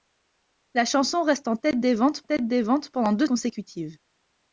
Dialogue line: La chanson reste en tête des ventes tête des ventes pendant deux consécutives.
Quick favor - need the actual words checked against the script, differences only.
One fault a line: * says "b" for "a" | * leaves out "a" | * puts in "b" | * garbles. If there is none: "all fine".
all fine